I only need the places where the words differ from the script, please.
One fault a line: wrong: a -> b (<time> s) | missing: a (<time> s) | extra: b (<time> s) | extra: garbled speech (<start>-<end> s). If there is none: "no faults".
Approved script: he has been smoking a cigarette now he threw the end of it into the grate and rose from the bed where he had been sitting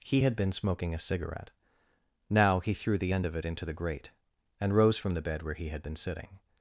wrong: has -> had (0.2 s)